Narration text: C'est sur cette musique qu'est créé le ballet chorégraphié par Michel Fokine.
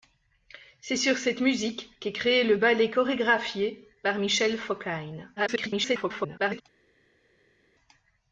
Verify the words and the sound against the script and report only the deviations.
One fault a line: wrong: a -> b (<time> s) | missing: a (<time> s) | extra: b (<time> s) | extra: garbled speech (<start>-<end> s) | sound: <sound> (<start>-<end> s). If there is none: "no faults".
extra: garbled speech (5.4-6.6 s)